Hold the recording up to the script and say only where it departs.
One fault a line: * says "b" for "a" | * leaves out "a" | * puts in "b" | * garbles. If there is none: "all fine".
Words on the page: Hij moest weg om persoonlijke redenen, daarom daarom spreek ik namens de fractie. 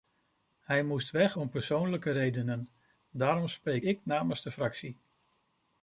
* leaves out "daarom"